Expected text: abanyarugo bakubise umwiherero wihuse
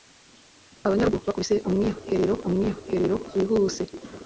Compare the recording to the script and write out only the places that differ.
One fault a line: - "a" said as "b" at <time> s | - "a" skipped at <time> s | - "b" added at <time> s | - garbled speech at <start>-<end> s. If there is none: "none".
- "umwiherero" added at 2.5 s